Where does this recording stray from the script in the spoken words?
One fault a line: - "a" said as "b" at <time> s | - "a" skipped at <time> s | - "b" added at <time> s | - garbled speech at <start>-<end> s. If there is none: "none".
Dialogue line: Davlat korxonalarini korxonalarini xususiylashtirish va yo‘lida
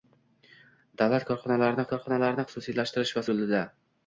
none